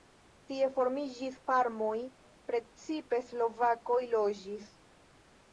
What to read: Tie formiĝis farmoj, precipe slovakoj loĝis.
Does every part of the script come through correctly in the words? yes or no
yes